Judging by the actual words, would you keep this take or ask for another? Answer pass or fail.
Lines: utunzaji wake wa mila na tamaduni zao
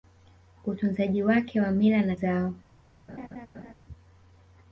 fail